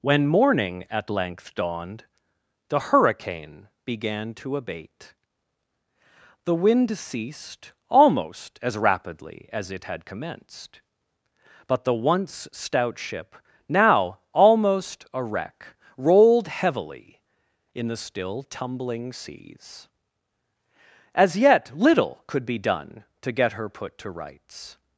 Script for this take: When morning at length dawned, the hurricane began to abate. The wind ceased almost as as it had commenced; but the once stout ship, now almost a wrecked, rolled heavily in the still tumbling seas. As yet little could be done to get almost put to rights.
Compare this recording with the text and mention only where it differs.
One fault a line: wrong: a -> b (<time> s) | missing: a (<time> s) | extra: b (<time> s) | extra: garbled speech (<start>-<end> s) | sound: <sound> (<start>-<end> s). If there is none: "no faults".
extra: rapidly (8.8 s)
wrong: wrecked -> wreck (15.2 s)
wrong: almost -> her (23.6 s)